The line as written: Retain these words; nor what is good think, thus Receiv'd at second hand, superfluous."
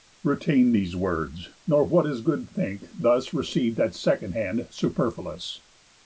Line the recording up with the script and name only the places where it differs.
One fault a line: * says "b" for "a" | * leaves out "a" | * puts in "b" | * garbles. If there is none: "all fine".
all fine